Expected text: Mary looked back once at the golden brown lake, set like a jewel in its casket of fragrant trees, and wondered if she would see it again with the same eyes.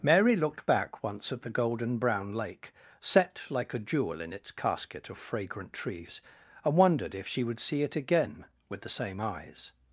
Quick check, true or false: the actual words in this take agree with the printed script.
true